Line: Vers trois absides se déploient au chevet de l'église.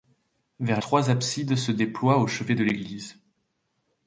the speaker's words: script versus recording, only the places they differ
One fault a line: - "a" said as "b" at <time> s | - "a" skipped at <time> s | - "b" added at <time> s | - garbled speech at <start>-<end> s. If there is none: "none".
none